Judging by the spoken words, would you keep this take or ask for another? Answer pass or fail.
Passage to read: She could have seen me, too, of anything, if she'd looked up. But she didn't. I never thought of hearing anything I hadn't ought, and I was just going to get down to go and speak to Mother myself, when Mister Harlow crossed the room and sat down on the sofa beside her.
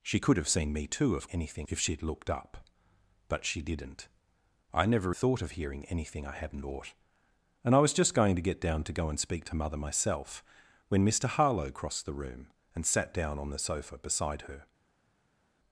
pass